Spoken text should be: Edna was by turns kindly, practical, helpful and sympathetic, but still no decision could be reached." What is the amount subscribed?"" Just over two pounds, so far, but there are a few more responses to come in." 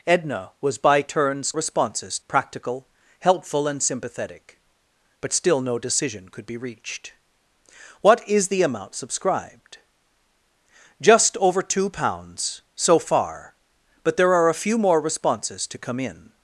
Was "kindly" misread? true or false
true